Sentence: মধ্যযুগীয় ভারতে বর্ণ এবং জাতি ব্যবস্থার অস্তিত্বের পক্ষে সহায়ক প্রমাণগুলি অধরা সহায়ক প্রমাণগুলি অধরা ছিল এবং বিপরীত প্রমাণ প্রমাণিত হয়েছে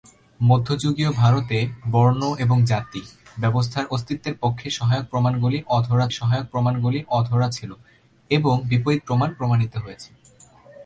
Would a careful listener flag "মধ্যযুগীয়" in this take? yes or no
no